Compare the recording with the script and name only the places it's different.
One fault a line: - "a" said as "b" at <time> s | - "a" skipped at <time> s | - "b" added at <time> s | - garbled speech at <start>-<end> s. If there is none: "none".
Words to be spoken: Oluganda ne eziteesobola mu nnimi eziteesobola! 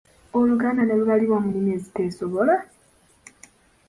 - "eziteesobola" said as "lubalibwa" at 1.0 s